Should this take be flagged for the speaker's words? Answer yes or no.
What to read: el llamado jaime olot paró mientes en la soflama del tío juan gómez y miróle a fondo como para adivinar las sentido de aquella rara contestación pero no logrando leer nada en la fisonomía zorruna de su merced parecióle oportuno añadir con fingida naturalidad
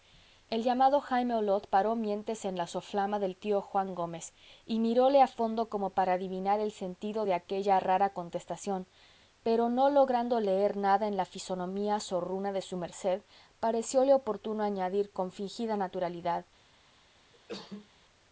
yes